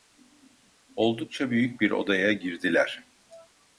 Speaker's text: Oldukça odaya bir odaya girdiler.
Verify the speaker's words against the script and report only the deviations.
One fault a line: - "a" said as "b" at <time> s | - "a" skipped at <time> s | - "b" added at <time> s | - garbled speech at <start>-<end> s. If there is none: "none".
- "odaya" said as "büyük" at 1.5 s